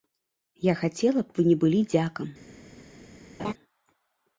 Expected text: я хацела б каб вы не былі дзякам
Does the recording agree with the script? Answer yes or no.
no